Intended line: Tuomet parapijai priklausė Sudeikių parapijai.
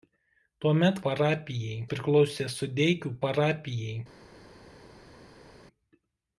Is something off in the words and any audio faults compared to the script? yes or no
no